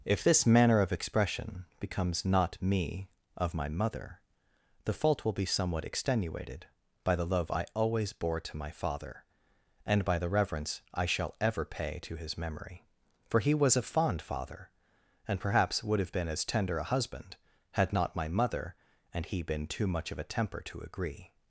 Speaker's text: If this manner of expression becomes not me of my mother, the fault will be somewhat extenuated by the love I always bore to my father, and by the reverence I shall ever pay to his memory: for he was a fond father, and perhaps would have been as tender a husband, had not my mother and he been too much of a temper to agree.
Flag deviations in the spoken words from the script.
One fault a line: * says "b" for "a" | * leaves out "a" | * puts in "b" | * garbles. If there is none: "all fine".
all fine